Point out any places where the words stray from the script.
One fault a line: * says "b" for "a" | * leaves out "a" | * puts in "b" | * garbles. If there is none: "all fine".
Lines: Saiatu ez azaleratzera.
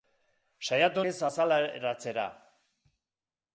all fine